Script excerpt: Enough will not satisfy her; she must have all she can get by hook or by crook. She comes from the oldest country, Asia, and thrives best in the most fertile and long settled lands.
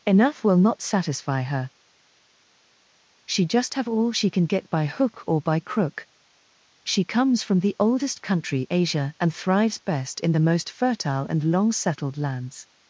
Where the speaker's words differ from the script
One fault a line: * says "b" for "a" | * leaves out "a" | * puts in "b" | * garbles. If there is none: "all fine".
* says "just" for "must"